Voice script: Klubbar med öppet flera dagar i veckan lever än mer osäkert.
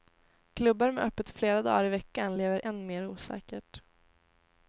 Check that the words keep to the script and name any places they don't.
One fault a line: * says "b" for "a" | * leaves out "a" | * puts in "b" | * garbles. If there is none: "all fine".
all fine